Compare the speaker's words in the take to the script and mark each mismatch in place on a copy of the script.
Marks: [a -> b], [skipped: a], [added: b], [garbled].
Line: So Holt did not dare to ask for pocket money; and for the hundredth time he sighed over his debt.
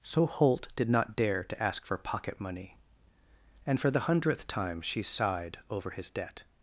So Holt did not dare to ask for pocket money; and for the hundredth time [he -> she] sighed over his debt.